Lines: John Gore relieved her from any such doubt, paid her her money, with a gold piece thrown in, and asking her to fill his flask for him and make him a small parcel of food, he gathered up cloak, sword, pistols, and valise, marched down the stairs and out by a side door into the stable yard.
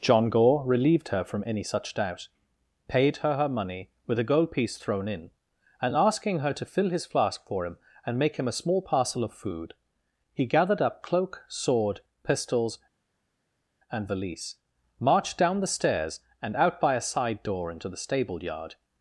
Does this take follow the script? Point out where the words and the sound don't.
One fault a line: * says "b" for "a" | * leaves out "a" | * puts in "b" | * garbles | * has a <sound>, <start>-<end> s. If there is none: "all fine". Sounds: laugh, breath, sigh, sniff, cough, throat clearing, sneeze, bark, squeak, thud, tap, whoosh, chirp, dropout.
all fine